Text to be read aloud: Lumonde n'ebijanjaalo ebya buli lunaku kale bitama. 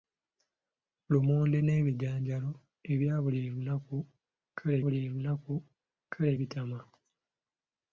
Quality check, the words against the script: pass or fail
fail